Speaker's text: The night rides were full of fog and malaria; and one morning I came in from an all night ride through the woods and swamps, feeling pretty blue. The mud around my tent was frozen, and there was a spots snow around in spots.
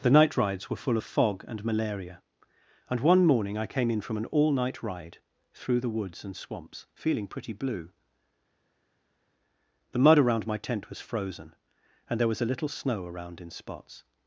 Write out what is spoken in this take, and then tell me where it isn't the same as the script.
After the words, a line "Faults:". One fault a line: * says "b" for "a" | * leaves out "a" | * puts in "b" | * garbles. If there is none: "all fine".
The night rides were full of fog and malaria; and one morning I came in from an all night ride through the woods and swamps, feeling pretty blue. The mud around my tent was frozen, and there was a little snow around in spots.
Faults:
* says "little" for "spots"